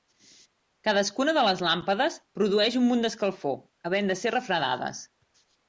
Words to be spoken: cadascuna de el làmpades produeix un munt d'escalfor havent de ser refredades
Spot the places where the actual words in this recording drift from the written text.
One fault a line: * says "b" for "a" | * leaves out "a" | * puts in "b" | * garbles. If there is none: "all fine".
* says "les" for "el"